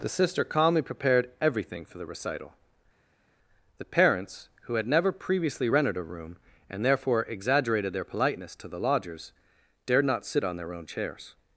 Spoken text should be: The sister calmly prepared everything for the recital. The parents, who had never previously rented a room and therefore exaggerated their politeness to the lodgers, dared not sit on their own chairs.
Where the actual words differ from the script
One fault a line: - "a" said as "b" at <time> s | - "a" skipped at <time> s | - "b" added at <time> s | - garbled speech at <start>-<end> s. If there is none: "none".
none